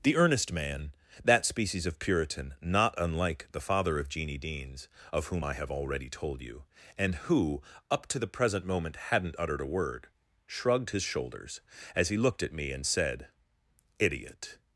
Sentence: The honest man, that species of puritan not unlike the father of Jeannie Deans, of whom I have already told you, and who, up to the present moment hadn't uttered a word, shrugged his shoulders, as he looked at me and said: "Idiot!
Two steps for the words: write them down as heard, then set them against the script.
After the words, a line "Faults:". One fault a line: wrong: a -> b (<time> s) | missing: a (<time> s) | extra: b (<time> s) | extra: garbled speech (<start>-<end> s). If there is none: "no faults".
The earnest man, that species of puritan not unlike the father of Jeannie Deans, of whom I have already told you, and who, up to the present moment hadn't uttered a word, shrugged his shoulders, as he looked at me and said: "Idiot!
Faults:
wrong: honest -> earnest (0.1 s)